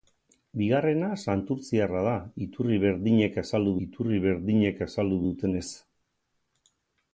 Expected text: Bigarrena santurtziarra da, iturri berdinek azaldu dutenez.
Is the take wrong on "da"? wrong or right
right